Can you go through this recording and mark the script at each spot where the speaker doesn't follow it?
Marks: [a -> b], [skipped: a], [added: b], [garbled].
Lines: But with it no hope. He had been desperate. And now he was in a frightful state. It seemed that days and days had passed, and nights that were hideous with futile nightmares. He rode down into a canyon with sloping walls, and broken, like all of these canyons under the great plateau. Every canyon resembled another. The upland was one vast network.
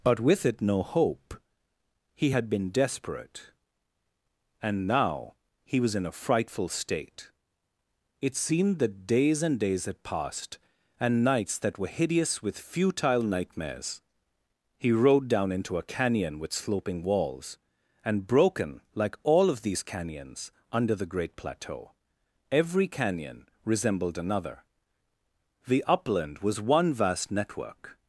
But with it no hope. He had been desperate. And now he was in a frightful state. It seemed that days and days had passed, and nights that were hideous with futile nightmares. He rode down into a canyon with sloping walls, and broken, like all of these canyons under the great plateau. Every canyon resembled another. The upland was one vast network.